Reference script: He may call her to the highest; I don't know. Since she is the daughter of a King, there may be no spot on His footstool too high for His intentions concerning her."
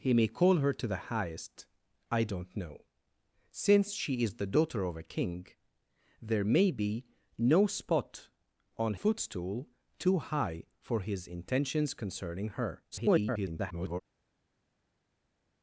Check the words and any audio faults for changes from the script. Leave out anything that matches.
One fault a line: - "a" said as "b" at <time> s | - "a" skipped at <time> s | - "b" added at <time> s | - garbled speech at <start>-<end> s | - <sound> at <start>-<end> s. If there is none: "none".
- "His" skipped at 8.9 s
- garbled speech at 12.9-14.0 s